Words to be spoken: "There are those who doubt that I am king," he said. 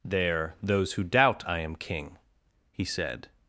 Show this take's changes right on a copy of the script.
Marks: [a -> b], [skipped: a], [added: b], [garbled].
"There [skipped: are] those who doubt [skipped: that] I am king," he said.